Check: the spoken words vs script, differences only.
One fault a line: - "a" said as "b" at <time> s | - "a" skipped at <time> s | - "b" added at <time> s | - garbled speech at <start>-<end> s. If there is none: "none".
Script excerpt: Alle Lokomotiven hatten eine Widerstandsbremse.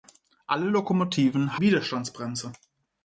- "hatten eine" skipped at 1.6 s